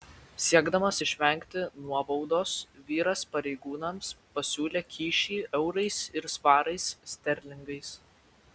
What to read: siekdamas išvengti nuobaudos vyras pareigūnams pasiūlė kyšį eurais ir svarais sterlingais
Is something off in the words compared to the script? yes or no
no